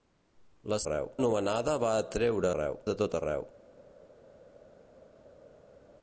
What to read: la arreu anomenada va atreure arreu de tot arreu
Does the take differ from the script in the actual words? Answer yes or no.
no